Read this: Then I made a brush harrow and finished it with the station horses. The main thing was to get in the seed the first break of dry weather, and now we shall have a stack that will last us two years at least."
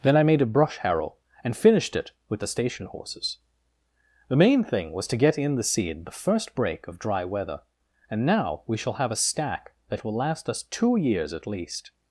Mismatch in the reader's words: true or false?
false